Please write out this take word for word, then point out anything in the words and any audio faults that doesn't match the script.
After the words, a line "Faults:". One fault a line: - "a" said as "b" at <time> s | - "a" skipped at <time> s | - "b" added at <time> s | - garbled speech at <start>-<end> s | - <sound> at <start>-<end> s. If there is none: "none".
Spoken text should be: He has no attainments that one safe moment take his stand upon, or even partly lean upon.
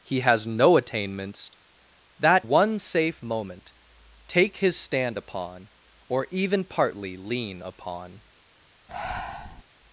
He has no attainments that one safe moment take his stand upon, or even partly lean upon.
Faults:
- breath at 8.9-9.6 s